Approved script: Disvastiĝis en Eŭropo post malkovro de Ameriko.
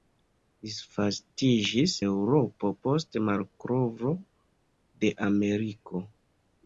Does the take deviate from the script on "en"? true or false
true